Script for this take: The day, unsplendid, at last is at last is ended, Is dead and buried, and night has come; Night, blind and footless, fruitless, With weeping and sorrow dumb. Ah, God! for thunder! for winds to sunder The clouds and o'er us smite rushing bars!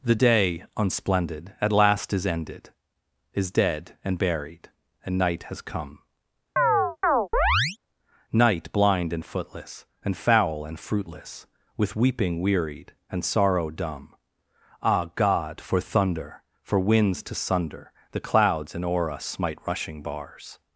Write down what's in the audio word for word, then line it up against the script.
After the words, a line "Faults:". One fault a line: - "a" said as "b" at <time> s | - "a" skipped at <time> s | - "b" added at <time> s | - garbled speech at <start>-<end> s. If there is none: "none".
The day, unsplendid, at last is ended, Is dead and buried, and night has come; Night, blind and footless, and foul and fruitless, With weeping wearied, and sorrow dumb. Ah, God! for thunder! for winds to sunder The clouds and o'er us smite rushing bars!
Faults:
- "at last is" skipped at 2.3 s
- "and foul and" added at 10.0 s
- "wearied" added at 12.4 s